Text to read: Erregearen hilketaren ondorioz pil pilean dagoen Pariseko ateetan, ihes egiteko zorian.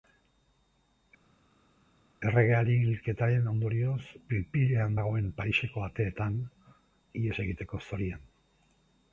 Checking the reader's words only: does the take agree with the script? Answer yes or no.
yes